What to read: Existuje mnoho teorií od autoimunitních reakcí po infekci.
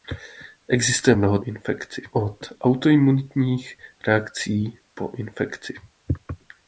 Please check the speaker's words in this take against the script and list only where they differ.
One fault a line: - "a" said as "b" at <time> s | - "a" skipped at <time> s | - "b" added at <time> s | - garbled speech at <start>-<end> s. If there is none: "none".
- "teorií" said as "infekci" at 1.4 s